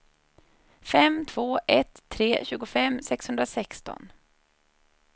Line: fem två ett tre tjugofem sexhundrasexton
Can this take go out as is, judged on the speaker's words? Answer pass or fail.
pass